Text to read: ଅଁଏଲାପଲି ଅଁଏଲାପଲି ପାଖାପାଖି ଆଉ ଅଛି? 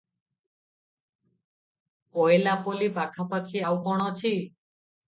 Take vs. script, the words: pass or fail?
fail